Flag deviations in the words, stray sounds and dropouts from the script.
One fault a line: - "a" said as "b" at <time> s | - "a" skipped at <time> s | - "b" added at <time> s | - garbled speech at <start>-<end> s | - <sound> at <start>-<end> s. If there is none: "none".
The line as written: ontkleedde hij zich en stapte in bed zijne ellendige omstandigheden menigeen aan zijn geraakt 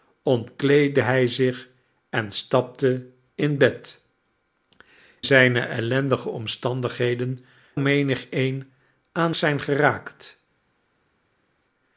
none